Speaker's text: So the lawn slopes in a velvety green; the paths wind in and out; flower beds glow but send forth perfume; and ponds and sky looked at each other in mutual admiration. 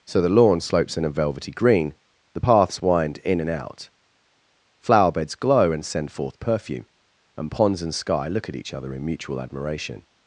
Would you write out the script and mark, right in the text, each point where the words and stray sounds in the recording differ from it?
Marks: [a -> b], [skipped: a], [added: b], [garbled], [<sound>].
So the lawn slopes in a velvety green; the paths wind in and out; flower beds glow [but -> and] send forth perfume; and ponds and sky [looked -> look] at each other in mutual admiration.